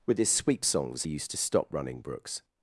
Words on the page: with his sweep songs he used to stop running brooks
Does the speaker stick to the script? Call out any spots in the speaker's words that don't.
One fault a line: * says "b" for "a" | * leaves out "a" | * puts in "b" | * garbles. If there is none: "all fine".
all fine